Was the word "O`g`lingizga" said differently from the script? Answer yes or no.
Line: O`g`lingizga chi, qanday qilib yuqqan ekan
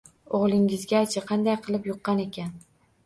no